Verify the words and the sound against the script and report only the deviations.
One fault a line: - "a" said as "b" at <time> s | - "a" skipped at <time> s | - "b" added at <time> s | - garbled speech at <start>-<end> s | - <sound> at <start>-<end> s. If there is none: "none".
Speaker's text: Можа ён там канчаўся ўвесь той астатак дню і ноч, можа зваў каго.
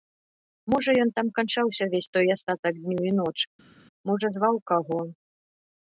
none